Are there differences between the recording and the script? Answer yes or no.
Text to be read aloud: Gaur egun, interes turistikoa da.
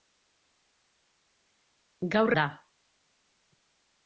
yes